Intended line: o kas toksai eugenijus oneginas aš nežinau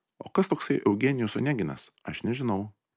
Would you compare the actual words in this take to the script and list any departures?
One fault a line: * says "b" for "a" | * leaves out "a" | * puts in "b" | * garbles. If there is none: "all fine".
all fine